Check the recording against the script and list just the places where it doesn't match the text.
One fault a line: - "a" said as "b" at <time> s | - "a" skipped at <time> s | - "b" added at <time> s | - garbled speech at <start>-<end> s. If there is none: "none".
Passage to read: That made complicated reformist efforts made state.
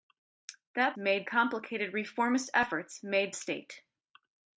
none